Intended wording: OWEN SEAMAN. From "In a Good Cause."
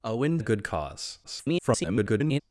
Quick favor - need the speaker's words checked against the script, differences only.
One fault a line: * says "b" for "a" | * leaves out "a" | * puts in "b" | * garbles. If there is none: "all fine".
* leaves out "SEAMAN From In"
* garbles